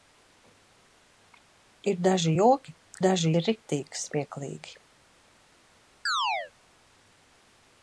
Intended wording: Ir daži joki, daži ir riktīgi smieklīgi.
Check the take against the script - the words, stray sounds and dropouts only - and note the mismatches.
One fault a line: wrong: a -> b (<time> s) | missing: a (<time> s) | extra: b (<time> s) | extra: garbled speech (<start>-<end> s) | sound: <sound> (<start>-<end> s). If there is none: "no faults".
sound: chirp (6.1-6.5 s)